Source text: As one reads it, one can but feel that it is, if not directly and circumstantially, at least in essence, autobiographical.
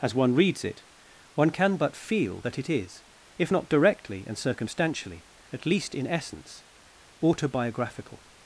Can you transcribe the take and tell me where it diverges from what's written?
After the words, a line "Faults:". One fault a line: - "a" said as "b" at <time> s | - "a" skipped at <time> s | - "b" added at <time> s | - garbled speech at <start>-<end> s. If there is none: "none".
As one reads it, one can but feel that it is, if not directly and circumstantially, at least in essence, autobiographical.
Faults:
none